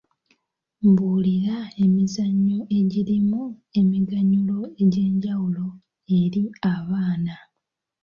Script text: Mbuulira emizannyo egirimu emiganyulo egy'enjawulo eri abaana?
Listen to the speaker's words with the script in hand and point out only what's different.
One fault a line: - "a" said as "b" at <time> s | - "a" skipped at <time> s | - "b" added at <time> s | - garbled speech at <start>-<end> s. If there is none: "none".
none